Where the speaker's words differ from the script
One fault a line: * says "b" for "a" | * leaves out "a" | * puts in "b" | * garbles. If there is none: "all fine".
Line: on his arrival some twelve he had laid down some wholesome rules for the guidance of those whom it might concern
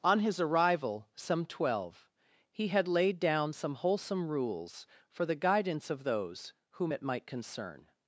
all fine